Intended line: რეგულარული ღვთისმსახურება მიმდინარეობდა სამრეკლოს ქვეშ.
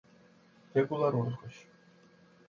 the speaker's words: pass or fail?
fail